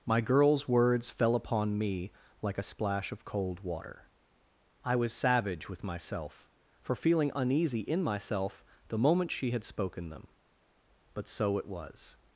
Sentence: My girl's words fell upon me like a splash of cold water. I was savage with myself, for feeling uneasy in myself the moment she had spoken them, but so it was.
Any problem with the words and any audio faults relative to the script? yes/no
no